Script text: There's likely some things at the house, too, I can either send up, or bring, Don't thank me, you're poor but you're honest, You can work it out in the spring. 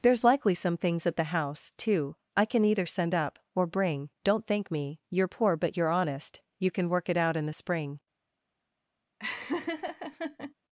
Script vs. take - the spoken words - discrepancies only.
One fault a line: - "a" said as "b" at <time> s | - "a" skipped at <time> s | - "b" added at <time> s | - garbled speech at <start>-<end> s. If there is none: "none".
none